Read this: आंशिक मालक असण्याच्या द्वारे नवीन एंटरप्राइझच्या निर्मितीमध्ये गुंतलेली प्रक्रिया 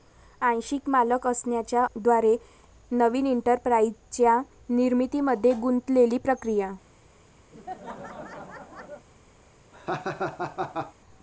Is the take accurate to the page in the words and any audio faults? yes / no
no